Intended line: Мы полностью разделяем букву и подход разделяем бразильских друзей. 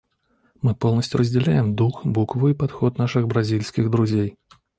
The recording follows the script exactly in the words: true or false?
false